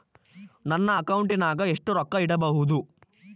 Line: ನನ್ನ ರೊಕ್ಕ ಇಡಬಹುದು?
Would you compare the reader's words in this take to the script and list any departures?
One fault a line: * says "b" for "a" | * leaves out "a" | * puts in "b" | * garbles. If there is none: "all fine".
* puts in "ಅಕೌಂಟಿನಾಗ ಎಷ್ಟು"